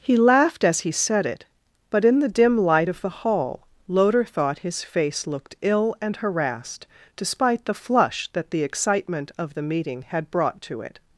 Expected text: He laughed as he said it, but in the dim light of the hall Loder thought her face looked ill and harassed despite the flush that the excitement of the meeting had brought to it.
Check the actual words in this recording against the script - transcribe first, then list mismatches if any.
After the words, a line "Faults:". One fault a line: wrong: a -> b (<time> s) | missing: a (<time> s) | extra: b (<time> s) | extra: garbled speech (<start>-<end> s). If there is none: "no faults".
He laughed as he said it, but in the dim light of the hall Loder thought his face looked ill and harassed despite the flush that the excitement of the meeting had brought to it.
Faults:
wrong: her -> his (4.6 s)